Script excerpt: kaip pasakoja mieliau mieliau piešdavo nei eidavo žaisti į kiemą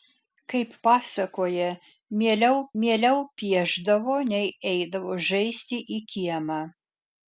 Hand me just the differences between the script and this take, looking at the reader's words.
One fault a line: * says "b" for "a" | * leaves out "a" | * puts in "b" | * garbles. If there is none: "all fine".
all fine